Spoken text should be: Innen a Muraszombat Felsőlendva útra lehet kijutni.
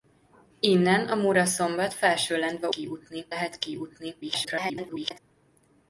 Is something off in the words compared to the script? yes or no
yes